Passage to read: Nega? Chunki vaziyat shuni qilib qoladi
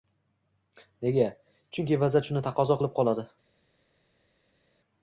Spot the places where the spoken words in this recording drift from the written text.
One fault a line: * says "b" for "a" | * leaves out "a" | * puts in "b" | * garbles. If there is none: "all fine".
* puts in "taqozo"